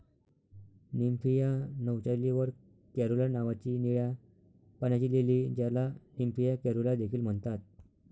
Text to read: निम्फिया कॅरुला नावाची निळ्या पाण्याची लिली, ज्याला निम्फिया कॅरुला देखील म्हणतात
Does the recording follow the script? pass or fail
fail